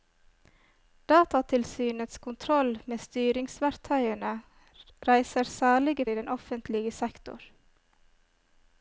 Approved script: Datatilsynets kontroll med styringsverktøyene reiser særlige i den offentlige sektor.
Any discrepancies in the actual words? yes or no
no